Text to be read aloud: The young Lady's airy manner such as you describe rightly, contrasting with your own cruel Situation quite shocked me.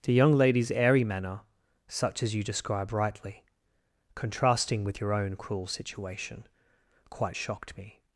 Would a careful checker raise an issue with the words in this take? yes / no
no